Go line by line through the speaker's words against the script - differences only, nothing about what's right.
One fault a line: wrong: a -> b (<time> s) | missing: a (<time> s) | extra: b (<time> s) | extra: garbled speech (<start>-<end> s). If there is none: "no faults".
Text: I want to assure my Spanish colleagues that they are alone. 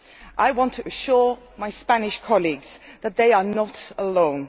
extra: not (3.4 s)